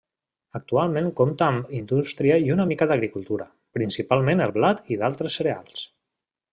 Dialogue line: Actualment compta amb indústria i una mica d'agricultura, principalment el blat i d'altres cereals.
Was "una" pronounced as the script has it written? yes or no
yes